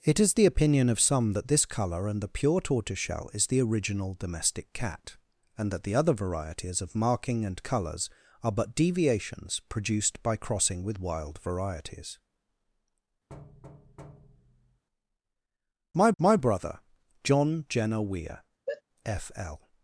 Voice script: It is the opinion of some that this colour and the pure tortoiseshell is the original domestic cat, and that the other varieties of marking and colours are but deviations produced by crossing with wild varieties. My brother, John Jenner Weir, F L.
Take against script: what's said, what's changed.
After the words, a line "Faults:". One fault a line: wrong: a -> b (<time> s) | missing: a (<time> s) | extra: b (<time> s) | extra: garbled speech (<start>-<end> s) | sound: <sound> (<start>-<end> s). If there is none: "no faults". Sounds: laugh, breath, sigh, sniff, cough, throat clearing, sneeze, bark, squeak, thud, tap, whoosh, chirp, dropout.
It is the opinion of some that this colour and the pure tortoiseshell is the original domestic cat, and that the other varieties of marking and colours are but deviations produced by crossing with wild varieties. My my brother, John Jenner Weir, F L.
Faults:
sound: thud (13.3-14.8 s)
extra: my (16.2 s)
sound: sneeze (18.7-18.8 s)